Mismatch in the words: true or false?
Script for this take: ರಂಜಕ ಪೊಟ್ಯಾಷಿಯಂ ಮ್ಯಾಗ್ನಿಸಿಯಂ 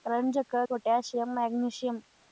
false